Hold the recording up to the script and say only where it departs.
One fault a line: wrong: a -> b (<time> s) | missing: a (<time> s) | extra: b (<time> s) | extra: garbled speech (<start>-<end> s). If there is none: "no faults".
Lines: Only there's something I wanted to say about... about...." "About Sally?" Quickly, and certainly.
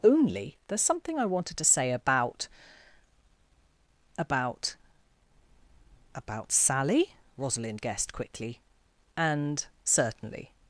extra: Rosalind guessed (7.4 s)